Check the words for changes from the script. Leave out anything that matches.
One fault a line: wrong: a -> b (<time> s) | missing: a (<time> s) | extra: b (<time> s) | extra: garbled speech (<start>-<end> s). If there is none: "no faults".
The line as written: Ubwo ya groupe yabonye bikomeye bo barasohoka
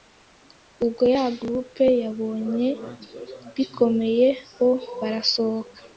no faults